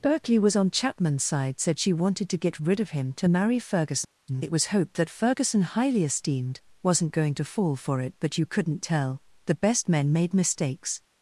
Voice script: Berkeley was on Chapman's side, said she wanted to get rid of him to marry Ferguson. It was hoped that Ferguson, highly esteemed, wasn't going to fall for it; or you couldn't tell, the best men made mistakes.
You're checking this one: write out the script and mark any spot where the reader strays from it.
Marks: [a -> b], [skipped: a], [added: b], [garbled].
Berkeley was on Chapman's side, said she wanted to get rid of him to marry Ferguson. It was hoped that Ferguson, highly esteemed, wasn't going to fall for it; [or -> but] you couldn't tell, the best men made mistakes.